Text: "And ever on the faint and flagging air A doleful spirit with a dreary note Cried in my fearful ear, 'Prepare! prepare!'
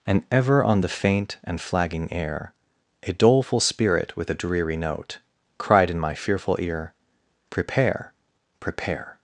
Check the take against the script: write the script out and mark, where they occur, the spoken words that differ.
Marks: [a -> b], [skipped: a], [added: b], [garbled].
"And ever on the faint and flagging air A doleful spirit with a dreary note Cried in my fearful ear, 'Prepare! prepare!'